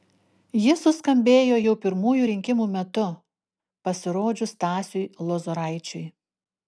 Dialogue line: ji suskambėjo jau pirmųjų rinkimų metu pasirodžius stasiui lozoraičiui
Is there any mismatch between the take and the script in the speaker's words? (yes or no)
no